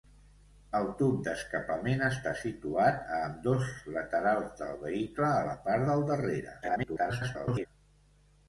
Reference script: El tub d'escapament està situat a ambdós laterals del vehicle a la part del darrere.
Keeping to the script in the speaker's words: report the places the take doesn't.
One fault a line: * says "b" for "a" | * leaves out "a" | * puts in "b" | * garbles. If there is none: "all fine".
* garbles